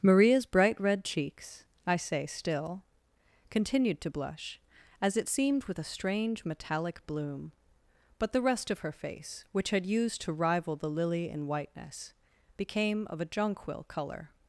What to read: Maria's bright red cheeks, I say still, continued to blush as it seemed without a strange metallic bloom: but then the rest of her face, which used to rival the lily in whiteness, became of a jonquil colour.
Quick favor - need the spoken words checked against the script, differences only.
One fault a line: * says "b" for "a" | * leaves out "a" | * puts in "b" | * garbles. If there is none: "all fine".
* says "with" for "without"
* leaves out "then"
* puts in "had"